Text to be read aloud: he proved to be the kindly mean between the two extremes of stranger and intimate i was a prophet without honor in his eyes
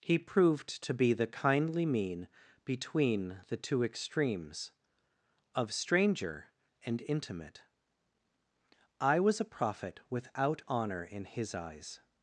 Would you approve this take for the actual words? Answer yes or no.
yes